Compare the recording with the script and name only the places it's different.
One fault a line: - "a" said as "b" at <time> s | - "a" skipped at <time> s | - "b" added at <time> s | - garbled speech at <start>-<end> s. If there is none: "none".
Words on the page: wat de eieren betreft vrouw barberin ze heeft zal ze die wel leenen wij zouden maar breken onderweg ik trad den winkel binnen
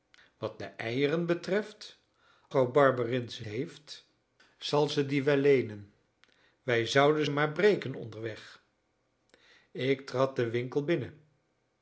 none